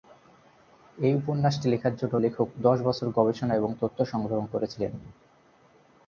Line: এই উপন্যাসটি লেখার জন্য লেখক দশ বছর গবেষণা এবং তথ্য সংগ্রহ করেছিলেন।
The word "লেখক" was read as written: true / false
true